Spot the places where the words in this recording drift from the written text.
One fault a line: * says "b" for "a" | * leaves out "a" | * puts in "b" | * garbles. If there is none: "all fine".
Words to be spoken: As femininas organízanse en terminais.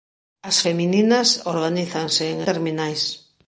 all fine